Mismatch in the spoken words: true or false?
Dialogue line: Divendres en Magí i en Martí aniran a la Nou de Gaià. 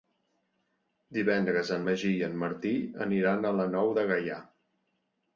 false